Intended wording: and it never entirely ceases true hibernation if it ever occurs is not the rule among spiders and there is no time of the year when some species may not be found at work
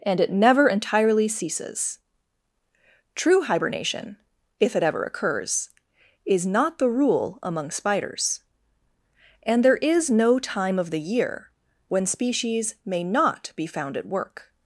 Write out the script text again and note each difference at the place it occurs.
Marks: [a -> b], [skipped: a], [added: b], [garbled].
and it never entirely ceases true hibernation if it ever occurs is not the rule among spiders and there is no time of the year when [skipped: some] species may not be found at work